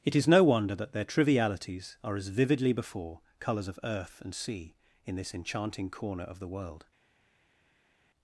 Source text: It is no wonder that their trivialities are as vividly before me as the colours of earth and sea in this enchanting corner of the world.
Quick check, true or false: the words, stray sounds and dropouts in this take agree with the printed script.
false